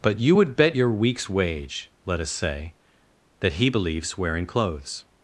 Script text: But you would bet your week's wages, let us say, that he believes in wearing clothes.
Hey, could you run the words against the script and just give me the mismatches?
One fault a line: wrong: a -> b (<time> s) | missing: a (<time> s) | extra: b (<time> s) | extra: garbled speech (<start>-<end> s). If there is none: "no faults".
wrong: wages -> wage (1.3 s)
missing: in (4.2 s)